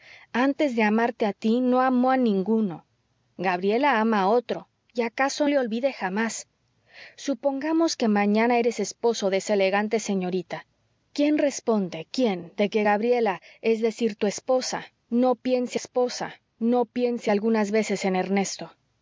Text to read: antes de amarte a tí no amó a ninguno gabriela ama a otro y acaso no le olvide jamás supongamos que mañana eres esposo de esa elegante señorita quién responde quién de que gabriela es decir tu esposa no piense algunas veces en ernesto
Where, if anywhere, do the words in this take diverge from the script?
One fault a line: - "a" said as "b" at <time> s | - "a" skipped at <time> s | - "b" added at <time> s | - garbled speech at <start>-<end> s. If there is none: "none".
- "no" skipped at 5.5 s
- "esposa no piense" added at 15.7 s